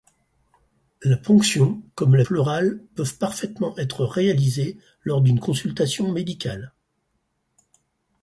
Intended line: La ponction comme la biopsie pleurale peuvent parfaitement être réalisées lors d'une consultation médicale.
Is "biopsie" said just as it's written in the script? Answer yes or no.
no